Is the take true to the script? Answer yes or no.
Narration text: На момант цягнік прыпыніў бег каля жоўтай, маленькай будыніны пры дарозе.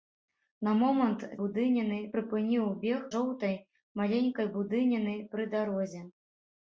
no